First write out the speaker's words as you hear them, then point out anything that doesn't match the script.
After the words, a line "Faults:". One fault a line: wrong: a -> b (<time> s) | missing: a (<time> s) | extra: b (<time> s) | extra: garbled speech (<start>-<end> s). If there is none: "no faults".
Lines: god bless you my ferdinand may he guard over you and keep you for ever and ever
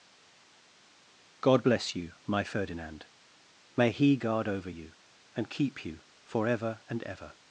god bless you my ferdinand may he guard over you and keep you for ever and ever
Faults:
no faults